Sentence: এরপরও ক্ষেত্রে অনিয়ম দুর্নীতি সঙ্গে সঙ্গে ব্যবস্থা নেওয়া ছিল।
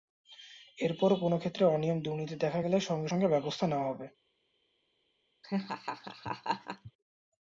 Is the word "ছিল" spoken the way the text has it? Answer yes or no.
no